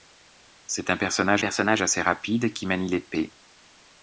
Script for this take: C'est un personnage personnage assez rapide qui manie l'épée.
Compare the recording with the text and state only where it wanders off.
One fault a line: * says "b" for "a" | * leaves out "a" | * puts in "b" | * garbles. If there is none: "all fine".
all fine